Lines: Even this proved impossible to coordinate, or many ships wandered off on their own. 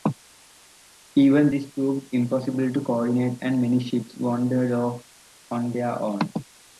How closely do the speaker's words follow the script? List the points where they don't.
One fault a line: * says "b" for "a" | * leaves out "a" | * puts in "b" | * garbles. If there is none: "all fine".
* says "and" for "or"